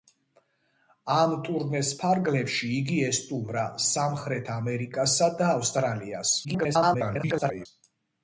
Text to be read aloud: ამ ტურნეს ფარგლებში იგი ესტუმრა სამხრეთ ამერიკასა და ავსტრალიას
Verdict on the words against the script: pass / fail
fail